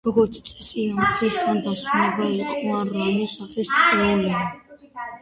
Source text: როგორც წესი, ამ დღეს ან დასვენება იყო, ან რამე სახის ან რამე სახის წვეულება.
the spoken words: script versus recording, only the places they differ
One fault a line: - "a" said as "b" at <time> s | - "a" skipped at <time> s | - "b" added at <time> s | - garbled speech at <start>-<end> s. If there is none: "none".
- "ან რამე სახის" skipped at 3.7 s